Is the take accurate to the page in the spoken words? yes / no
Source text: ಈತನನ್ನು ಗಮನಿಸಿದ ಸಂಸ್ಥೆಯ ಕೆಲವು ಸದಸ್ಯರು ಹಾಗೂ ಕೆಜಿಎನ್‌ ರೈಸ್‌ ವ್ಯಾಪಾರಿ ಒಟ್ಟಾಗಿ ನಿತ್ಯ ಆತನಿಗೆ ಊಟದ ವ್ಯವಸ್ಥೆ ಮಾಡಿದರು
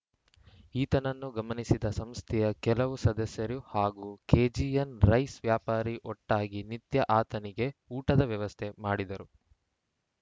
yes